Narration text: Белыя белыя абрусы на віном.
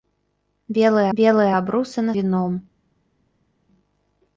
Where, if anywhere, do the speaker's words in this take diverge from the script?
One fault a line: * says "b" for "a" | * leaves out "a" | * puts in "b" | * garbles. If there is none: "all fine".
all fine